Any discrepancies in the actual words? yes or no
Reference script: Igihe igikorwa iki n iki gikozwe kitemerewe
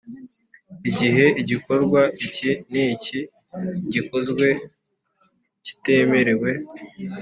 no